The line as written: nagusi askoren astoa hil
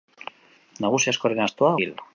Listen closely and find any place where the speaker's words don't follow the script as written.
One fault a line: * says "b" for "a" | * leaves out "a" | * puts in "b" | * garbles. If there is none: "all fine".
all fine